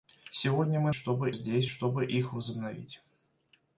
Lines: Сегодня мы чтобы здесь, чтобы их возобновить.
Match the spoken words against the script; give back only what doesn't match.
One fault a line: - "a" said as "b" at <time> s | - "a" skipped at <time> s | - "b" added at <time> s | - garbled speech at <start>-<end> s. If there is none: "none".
none